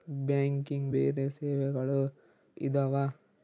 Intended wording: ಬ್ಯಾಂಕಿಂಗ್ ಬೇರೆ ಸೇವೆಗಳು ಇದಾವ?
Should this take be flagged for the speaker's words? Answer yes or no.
no